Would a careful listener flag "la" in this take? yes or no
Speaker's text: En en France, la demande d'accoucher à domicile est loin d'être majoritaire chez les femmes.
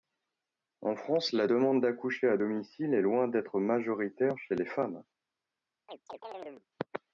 no